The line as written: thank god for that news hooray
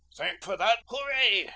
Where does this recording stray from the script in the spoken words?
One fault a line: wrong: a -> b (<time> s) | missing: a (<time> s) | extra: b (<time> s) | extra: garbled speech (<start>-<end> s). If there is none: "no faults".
missing: god (0.5 s)
missing: news (0.8 s)